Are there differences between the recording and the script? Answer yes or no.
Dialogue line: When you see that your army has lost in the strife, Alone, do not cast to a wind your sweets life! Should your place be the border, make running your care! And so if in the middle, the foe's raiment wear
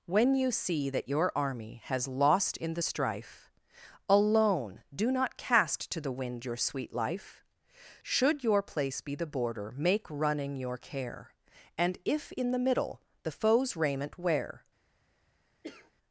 yes